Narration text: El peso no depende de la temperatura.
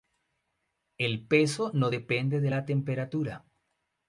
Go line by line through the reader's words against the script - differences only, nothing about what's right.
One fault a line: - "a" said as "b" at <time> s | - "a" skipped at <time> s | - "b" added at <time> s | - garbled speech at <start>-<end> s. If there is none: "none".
none